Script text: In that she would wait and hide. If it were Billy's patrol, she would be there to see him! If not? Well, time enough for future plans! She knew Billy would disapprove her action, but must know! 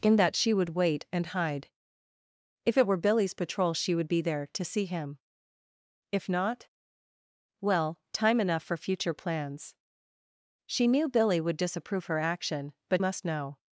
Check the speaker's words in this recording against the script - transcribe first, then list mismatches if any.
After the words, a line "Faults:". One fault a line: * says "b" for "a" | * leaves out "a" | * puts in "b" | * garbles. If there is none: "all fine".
In that she would wait and hide. If it were Billy's patrol, she would be there to see him! If not? Well, time enough for future plans! She knew Billy would disapprove her action, but must know!
Faults:
all fine